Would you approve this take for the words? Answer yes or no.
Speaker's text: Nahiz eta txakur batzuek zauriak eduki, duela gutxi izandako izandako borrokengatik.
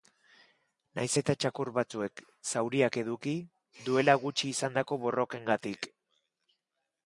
no